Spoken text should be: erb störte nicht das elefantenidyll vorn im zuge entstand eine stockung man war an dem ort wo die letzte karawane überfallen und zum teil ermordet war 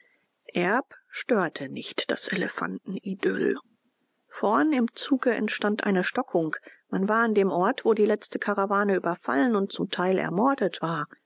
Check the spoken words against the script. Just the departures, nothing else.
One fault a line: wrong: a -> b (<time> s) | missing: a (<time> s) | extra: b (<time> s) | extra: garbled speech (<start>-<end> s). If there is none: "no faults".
no faults